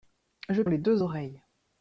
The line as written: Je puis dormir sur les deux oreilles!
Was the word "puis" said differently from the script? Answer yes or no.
yes